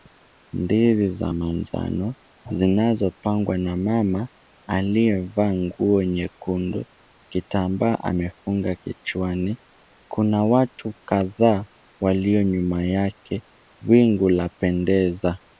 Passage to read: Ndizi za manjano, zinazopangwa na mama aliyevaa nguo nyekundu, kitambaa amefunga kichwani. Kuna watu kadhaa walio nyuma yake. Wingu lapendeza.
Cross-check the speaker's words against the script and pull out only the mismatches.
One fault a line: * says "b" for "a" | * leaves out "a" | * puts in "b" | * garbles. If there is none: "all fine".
all fine